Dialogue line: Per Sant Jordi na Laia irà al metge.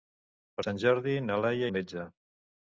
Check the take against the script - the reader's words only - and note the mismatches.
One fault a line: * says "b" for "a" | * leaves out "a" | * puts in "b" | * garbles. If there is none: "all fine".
* leaves out "irà"